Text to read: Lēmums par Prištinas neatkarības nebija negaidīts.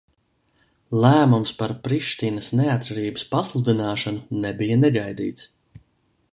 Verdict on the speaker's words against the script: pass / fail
fail